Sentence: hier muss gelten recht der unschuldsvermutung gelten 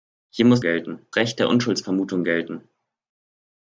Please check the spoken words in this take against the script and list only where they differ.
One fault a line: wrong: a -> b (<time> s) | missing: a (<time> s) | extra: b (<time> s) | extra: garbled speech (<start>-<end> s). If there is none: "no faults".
no faults